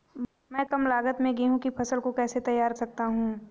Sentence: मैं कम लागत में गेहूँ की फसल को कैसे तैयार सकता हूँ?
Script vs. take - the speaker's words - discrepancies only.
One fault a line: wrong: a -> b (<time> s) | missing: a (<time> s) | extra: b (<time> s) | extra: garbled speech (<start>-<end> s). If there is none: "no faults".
no faults